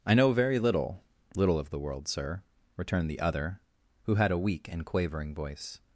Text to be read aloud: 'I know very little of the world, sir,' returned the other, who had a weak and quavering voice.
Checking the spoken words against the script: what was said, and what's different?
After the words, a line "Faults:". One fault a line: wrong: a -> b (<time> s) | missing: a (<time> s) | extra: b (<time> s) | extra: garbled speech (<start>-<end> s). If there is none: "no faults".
'I know very little little of the world, sir,' returned the other, who had a weak and quavering voice.
Faults:
extra: little (1.4 s)